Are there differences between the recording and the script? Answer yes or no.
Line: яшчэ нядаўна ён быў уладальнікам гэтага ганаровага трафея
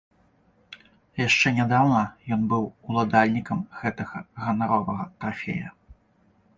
no